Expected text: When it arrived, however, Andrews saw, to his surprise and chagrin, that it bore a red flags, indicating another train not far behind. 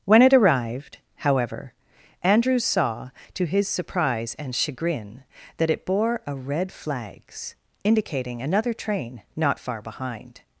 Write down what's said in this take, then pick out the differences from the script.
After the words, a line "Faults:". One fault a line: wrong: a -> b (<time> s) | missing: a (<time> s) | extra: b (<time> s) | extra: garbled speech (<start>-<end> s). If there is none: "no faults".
When it arrived, however, Andrews saw, to his surprise and chagrin, that it bore a red flags, indicating another train not far behind.
Faults:
no faults